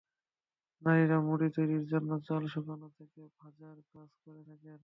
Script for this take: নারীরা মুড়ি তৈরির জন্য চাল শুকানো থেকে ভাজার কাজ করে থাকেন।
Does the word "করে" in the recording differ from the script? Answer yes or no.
no